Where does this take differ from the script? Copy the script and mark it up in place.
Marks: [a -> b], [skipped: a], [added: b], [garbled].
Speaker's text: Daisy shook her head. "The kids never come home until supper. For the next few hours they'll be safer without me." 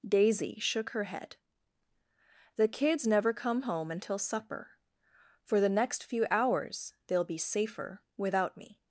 Daisy shook her head. "The kids never come home until supper. For the next few hours they'll be safer without me."